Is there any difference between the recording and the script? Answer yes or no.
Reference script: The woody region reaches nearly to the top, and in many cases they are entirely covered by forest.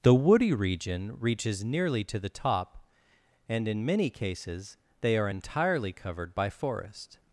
no